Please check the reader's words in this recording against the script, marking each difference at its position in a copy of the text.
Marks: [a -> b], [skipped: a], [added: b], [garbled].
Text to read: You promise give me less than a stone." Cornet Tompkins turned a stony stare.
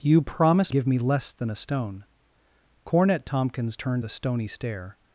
You promise give me less than a stone." Cornet Tompkins turned a stony stare.